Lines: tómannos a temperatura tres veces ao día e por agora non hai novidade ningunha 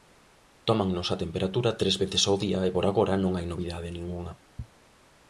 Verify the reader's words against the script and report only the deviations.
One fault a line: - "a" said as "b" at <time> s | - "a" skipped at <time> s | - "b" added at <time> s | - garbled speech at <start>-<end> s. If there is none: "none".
none